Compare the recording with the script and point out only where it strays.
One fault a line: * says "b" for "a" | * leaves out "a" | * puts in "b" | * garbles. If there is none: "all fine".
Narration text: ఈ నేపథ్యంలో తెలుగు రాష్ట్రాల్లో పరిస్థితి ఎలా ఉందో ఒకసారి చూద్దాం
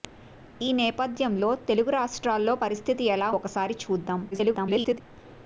* leaves out "ఉందో"
* garbles